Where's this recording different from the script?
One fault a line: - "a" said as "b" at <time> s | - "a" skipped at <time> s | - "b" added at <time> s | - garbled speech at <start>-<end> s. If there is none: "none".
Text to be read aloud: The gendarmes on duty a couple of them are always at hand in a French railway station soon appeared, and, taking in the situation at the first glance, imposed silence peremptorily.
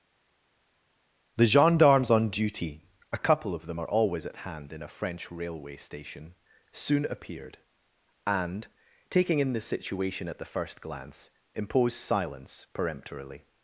none